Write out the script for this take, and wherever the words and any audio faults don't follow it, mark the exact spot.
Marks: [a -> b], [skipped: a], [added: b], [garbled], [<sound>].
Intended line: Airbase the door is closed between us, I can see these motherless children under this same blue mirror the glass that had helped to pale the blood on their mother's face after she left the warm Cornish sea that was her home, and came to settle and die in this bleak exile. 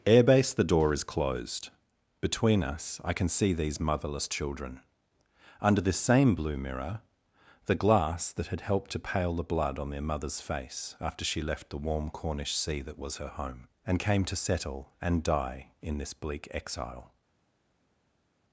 Airbase the door is closed between us, I can see these motherless children under this same blue mirror the glass that had helped to pale the blood on their mother's face after she left the warm Cornish sea that was her home, and came to settle and die in this bleak exile.